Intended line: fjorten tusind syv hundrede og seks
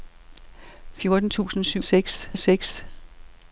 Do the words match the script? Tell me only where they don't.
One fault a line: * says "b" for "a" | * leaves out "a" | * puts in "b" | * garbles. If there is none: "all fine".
* says "seks" for "hundrede"